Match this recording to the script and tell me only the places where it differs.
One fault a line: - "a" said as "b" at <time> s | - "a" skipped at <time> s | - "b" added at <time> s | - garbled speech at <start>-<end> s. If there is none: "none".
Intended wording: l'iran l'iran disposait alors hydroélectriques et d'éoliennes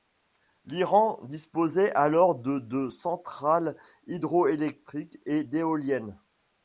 - "l'iran" skipped at 1.2 s
- "de de centrales" added at 2.4 s